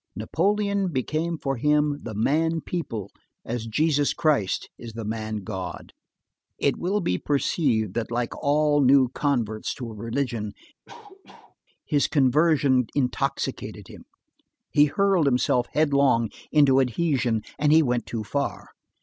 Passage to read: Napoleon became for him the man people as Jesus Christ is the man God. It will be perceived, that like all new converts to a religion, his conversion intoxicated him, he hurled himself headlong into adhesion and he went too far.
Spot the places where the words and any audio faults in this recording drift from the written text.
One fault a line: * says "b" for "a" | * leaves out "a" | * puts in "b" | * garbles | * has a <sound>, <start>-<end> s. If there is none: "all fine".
* has a cough, 10.9-11.6 s